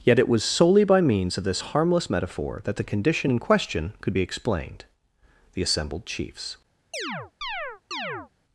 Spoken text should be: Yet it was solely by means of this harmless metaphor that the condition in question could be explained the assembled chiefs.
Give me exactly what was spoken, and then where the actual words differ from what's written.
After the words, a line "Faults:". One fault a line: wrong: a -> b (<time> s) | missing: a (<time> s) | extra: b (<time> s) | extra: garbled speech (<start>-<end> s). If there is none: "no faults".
Yet it was solely by means of this harmless metaphor that the condition in question could be explained the assembled chiefs.
Faults:
no faults